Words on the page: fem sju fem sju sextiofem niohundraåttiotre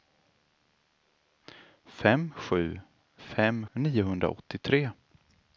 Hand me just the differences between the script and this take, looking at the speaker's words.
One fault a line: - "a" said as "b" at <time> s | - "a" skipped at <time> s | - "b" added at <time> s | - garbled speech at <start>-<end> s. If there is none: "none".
- "sju sextiofem" skipped at 3.6 s